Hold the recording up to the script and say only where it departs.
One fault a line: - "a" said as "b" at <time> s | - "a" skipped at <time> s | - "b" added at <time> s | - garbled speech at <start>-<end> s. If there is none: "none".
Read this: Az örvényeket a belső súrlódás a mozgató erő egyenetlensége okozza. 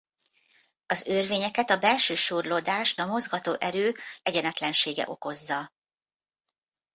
none